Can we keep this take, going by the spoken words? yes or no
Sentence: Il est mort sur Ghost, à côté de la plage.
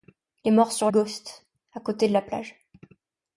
yes